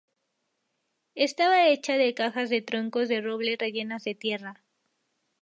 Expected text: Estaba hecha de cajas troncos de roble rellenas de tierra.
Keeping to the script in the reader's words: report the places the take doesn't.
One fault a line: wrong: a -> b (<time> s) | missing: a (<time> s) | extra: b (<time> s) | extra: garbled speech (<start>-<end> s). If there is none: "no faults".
extra: de (2.5 s)